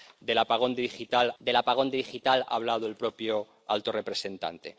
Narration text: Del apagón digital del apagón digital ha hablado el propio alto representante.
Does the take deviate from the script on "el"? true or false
false